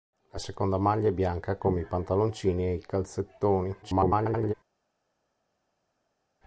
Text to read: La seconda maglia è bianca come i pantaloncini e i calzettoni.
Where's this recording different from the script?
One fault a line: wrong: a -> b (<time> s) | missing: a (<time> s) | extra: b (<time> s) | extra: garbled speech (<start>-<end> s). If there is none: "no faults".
extra: garbled speech (3.8-4.5 s)